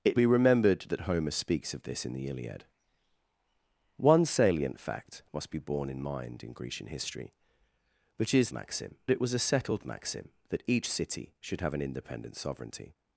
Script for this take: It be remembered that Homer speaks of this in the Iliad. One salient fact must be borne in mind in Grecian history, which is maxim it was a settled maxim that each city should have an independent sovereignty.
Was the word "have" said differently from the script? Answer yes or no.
no